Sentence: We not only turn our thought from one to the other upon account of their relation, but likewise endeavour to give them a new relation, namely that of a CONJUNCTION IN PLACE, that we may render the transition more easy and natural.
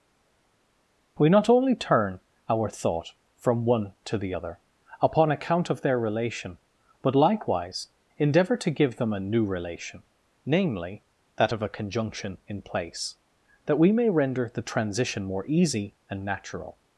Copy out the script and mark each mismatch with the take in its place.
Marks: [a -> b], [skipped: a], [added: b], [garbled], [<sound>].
We not only turn our thought from one to the other upon account of their relation, but likewise endeavour to give them a new relation, namely that of a CONJUNCTION IN PLACE, that we may render the transition more easy and natural.